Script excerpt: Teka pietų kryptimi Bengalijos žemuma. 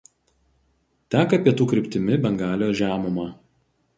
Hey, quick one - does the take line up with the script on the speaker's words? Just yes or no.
yes